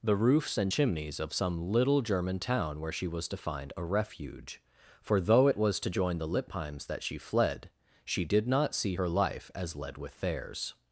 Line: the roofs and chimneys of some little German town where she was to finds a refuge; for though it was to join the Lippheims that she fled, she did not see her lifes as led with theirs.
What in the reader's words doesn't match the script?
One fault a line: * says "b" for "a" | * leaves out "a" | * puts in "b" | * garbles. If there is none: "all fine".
* says "find" for "finds"
* says "life" for "lifes"